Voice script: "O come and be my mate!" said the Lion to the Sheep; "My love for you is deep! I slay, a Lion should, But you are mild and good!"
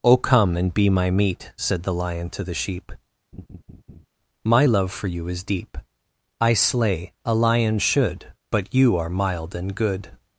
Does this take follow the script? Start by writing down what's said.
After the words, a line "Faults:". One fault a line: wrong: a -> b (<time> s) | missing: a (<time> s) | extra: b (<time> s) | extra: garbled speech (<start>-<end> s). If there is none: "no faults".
"O come and be my meat!" said the Lion to the Sheep; "My love for you is deep! I slay, a Lion should, But you are mild and good!"
Faults:
wrong: mate -> meat (1.1 s)